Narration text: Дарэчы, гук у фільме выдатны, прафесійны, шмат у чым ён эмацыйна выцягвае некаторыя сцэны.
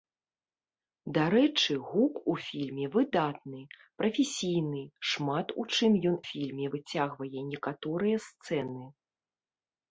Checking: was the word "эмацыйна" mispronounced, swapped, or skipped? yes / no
yes